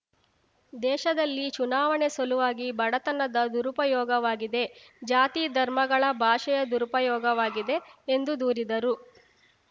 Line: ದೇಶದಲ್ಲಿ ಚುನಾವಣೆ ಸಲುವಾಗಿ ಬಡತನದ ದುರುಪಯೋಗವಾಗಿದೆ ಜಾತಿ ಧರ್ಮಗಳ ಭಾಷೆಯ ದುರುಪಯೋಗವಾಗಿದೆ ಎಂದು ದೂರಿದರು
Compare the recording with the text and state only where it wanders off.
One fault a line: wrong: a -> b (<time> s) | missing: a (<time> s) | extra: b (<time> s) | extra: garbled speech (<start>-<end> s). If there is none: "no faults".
no faults